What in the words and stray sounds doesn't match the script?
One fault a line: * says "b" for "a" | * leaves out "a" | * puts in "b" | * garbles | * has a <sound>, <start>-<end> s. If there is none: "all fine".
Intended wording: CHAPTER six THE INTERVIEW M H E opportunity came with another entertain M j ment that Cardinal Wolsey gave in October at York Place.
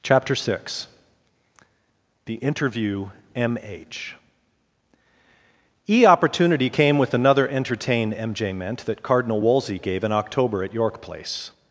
all fine